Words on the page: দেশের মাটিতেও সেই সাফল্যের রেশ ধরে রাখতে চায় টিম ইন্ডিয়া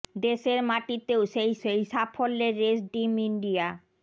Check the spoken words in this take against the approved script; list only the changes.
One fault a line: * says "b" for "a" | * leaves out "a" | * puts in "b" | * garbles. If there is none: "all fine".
* puts in "সেই"
* leaves out "ধরে রাখতে চায়"